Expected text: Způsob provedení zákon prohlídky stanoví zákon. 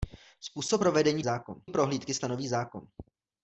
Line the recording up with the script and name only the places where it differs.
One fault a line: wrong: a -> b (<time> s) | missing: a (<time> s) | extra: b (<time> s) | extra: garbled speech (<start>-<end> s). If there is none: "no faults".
no faults